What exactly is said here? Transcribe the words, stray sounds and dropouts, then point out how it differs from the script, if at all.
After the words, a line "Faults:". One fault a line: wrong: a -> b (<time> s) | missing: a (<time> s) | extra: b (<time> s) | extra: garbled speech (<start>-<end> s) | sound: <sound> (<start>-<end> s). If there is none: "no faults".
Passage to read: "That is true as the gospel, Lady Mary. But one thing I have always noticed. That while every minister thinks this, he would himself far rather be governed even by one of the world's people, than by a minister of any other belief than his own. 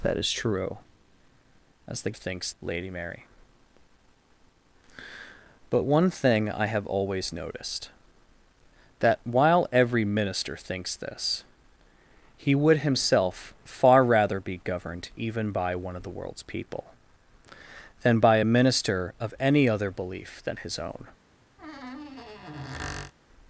"That is true as the thinks, Lady Mary. But one thing I have always noticed. That while every minister thinks this, he would himself far rather be governed even by one of the world's people, than by a minister of any other belief than his own.
Faults:
wrong: gospel -> thinks (2.1 s)
sound: squeak (21.6-23.1 s)